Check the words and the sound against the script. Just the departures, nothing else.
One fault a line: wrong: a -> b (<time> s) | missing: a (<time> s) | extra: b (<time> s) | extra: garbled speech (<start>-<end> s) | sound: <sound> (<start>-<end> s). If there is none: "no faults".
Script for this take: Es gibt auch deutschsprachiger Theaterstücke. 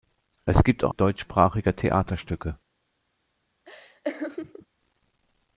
sound: laugh (3.6-4.7 s)